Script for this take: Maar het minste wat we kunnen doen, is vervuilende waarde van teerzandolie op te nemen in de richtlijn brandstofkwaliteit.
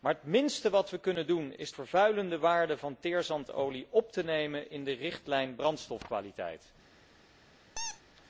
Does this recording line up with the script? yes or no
yes